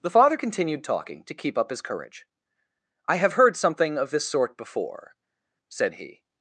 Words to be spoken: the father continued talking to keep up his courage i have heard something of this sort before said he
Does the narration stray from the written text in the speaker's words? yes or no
no